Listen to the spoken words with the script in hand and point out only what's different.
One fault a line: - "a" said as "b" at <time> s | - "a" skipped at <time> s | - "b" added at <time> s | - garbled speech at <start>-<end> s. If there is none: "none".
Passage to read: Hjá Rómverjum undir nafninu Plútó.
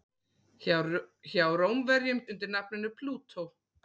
none